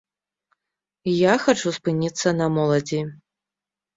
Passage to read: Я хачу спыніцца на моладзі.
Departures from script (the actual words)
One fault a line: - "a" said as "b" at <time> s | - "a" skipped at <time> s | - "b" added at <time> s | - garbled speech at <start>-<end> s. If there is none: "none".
none